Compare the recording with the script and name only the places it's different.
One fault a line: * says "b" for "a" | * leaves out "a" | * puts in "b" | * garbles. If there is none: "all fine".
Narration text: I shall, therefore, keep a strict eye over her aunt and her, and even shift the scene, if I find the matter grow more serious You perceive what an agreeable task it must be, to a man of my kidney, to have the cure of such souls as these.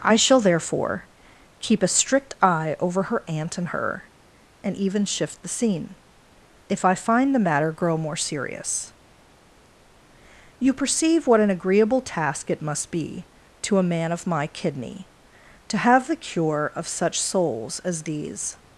all fine